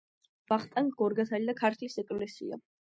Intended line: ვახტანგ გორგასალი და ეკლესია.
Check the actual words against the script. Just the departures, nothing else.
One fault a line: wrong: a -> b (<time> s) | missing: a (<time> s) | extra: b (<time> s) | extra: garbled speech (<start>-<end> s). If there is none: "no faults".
extra: ქართლის (1.7 s)